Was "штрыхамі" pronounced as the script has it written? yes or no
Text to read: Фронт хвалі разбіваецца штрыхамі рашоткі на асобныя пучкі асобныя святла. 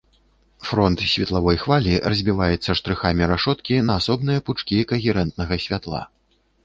yes